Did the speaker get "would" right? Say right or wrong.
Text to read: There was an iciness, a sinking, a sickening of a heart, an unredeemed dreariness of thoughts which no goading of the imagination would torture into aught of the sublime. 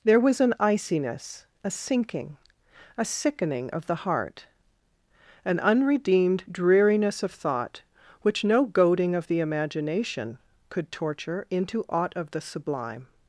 wrong